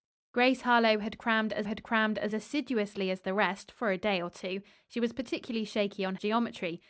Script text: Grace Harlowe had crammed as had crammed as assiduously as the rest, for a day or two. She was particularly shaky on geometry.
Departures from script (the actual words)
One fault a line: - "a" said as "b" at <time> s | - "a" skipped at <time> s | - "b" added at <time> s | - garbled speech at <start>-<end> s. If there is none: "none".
none